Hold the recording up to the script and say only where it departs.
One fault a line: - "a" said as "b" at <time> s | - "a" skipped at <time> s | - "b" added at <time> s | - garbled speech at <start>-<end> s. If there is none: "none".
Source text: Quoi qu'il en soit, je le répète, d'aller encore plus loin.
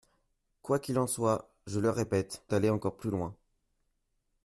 none